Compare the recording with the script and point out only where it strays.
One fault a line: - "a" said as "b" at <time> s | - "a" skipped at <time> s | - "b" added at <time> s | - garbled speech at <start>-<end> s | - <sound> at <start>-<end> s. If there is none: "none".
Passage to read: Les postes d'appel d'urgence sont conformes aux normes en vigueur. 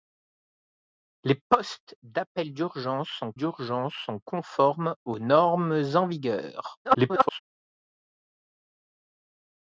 - "d'urgence sont" added at 3.4 s
- garbled speech at 6.8-7.4 s